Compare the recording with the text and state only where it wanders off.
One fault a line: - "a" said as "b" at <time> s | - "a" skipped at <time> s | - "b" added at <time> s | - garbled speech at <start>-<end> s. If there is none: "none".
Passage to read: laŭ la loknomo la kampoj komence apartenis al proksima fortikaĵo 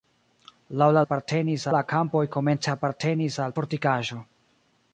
- "loknomo" said as "apartenis" at 1.0 s
- "proksima" skipped at 3.5 s